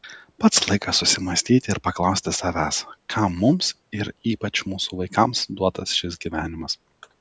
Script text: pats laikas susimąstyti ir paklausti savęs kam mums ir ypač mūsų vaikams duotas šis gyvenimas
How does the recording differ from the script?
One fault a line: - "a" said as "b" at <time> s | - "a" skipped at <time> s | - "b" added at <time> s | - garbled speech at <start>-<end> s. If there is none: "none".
none